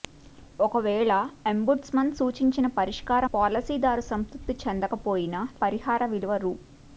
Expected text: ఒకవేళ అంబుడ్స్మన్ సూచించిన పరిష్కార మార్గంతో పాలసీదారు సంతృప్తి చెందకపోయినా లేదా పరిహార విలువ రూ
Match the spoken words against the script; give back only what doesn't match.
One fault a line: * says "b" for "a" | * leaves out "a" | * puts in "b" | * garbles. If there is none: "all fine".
* leaves out "మార్గంతో"
* leaves out "లేదా"